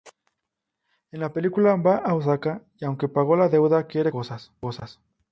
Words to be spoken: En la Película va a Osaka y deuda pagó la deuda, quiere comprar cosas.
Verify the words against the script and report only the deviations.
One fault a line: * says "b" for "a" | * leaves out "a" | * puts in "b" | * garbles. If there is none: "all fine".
* says "aunque" for "deuda"